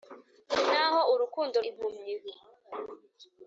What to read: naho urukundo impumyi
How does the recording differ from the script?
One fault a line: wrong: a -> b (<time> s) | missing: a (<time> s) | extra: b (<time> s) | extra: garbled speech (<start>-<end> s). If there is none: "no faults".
no faults